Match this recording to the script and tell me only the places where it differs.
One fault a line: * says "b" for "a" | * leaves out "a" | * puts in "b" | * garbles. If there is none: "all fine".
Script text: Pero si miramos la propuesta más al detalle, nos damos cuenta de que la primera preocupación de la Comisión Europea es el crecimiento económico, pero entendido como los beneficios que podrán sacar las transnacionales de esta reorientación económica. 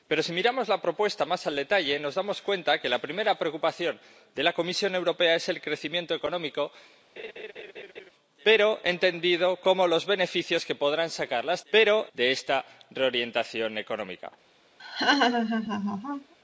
* says "pero" for "transnacionales"